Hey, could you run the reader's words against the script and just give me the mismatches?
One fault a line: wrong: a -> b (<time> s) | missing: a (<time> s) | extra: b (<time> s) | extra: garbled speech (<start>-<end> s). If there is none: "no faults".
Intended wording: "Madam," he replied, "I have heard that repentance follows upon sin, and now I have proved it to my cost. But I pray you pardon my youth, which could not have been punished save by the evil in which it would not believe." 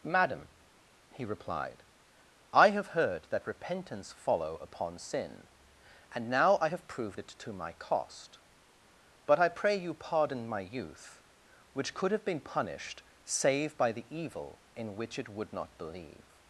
wrong: follows -> follow (4.1 s)
missing: not (12.1 s)